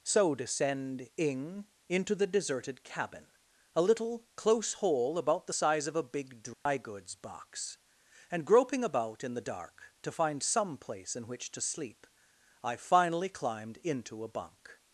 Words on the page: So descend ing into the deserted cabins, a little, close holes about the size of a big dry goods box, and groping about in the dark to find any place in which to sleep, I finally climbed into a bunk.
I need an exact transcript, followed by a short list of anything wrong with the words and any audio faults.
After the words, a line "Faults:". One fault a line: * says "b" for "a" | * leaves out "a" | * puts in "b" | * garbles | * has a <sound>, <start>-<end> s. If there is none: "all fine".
So descend ing into the deserted cabin, a little, close hole about the size of a big dry goods box, and groping about in the dark to find some place in which to sleep, I finally climbed into a bunk.
Faults:
* says "cabin" for "cabins"
* says "hole" for "holes"
* has a dropout, 6.5-6.7 s
* says "some" for "any"